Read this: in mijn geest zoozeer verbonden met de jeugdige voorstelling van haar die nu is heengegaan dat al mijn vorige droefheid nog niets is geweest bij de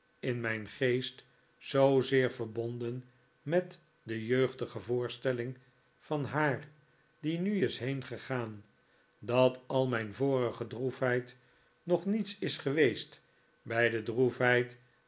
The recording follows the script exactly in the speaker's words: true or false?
true